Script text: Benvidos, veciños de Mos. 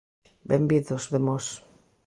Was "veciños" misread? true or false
true